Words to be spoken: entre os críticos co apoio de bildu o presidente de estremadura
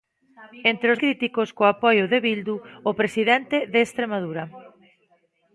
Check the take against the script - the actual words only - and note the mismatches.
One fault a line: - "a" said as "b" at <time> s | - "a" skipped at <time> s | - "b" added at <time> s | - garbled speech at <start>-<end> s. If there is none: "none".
none